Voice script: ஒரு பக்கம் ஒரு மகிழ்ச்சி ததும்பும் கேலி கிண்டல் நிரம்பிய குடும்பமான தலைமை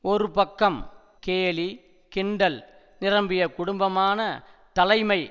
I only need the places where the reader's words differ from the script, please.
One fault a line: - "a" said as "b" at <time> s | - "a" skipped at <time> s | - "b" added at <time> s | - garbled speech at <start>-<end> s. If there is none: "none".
- "ஒரு மகிழ்ச்சி ததும்பும்" skipped at 0.8 s